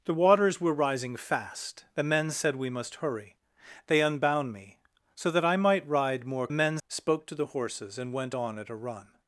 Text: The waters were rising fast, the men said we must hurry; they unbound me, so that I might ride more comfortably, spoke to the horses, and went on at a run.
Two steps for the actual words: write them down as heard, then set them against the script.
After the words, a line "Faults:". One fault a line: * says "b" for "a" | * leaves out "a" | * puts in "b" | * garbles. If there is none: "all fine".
The waters were rising fast, the men said we must hurry; they unbound me, so that I might ride more men, spoke to the horses, and went on at a run.
Faults:
* says "men" for "comfortably"